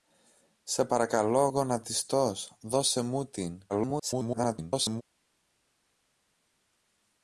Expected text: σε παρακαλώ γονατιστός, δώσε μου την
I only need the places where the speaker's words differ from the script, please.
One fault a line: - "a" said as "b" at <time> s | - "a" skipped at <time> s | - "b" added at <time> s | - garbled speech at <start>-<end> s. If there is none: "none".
- garbled speech at 3.7-5.0 s